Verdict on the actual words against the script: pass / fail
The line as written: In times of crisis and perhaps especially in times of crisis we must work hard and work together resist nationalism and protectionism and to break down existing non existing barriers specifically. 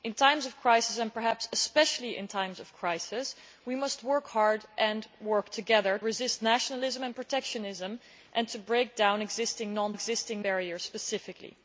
pass